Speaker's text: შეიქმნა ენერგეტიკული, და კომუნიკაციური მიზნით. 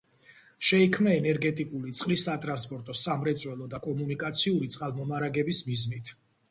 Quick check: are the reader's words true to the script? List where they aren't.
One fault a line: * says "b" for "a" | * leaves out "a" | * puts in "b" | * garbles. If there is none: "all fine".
* puts in "წყლის სატრანსპორტო სამრეწველო"
* puts in "წყალმომარაგების"